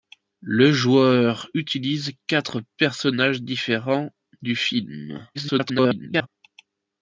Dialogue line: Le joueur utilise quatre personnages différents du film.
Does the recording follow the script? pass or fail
fail